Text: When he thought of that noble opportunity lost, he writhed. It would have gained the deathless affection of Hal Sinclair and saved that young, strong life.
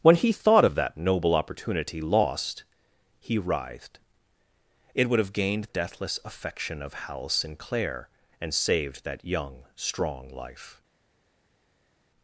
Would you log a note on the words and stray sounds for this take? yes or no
yes